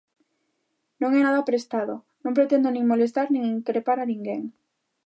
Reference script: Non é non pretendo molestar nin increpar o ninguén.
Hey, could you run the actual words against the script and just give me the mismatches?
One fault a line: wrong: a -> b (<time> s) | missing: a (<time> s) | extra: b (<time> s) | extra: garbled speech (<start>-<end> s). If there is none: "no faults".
extra: nada prestado (1.3 s)
extra: nin (2.7 s)
wrong: o -> a (4.0 s)